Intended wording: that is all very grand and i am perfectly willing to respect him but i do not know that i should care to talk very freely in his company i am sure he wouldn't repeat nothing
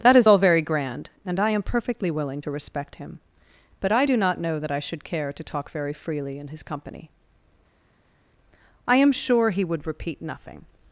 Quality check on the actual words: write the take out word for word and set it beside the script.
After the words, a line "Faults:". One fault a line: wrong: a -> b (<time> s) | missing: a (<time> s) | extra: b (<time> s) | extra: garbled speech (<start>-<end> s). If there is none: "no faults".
that is all very grand and i am perfectly willing to respect him but i do not know that i should care to talk very freely in his company i am sure he would repeat nothing
Faults:
wrong: wouldn't -> would (9.6 s)